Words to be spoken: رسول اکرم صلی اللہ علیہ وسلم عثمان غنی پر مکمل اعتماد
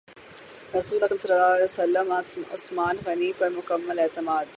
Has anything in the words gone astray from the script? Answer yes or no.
no